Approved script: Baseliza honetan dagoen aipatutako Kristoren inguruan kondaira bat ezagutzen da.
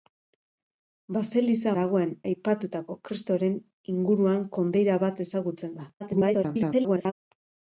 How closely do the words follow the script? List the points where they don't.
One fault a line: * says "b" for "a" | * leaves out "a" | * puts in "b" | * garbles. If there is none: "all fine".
* leaves out "honetan"
* garbles